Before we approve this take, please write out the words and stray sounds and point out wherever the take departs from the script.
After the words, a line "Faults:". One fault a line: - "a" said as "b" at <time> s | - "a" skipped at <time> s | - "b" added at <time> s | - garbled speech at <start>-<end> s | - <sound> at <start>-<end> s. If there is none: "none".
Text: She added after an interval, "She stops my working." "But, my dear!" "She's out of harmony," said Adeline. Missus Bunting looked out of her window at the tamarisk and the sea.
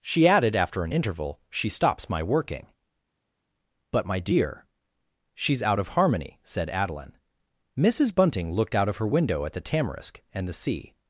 She added after an interval, "She stops my working." "But, my dear!" "She's out of harmony," said Adeline. Missus Bunting looked out of her window at the tamarisk and the sea.
Faults:
none